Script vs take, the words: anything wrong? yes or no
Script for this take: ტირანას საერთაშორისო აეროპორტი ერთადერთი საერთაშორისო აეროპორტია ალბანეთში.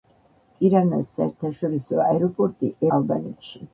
yes